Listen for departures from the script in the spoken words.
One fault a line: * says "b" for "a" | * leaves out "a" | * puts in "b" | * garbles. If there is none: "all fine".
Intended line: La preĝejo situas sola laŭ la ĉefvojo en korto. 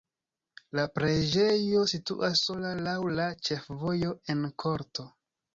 all fine